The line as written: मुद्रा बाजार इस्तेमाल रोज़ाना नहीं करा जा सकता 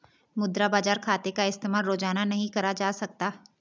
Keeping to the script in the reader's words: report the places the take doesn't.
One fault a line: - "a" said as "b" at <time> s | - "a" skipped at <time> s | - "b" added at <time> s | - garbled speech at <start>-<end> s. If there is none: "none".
- "खाते का" added at 1.0 s